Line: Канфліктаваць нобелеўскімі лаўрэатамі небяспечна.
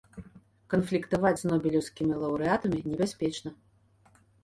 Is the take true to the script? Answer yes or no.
no